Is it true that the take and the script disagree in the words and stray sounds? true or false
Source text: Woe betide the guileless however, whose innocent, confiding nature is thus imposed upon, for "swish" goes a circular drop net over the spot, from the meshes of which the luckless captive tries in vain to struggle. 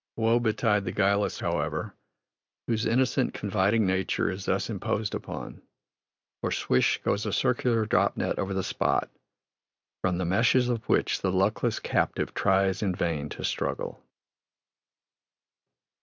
false